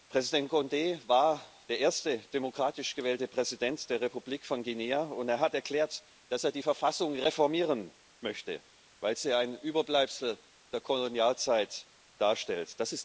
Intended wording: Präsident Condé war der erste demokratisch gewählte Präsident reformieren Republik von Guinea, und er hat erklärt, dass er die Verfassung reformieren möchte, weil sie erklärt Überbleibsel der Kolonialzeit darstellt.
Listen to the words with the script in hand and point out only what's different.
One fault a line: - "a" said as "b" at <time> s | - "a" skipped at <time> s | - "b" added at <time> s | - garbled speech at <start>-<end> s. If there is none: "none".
- "reformieren" said as "der" at 3.9 s
- "erklärt" said as "ein" at 9.3 s